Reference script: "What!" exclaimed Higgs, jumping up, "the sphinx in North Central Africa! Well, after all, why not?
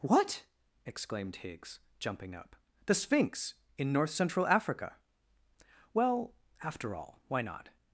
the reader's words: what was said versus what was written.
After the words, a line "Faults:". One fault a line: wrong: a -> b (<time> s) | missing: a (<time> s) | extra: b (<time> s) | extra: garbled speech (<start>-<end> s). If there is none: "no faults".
"What!" exclaimed Higgs, jumping up, "the sphinx in North Central Africa! Well, after all, why not?
Faults:
no faults